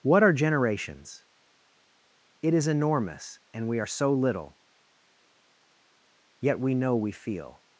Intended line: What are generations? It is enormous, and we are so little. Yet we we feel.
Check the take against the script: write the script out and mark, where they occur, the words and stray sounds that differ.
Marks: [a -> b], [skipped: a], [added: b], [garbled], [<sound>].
What are generations? It is enormous, and we are so little. Yet we [added: know] we feel.